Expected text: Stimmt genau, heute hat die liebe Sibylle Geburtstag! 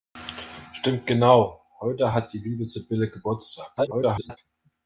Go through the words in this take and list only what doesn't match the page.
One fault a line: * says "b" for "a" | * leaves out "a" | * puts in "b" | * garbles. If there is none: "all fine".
* garbles